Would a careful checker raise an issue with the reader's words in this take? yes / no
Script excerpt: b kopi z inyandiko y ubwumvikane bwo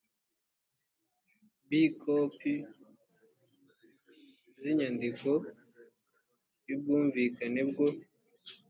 no